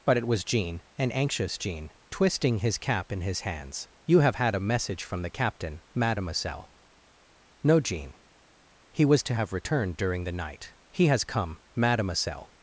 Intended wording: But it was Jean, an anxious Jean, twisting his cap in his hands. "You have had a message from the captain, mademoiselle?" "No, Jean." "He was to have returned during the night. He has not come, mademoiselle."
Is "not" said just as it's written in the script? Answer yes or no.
no